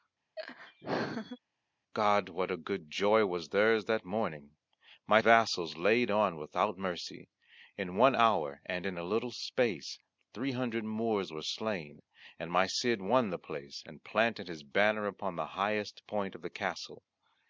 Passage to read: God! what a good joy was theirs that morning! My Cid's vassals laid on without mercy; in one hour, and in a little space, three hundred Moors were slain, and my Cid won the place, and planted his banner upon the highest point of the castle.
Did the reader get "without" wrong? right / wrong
right